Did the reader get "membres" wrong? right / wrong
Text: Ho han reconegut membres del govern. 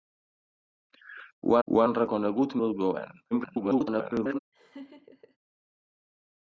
wrong